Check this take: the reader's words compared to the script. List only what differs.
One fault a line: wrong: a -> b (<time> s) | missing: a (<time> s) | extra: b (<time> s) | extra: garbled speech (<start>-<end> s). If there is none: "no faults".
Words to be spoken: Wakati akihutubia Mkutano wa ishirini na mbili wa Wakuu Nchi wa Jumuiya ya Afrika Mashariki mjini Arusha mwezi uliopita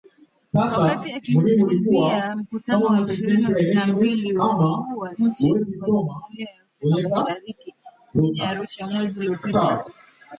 extra: wa (5.0 s)